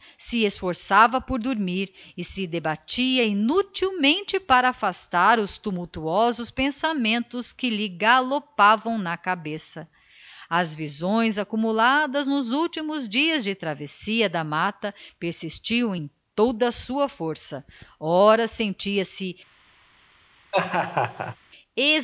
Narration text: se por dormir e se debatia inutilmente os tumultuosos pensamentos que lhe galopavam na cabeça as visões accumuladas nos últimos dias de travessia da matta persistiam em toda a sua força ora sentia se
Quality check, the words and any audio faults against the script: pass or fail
fail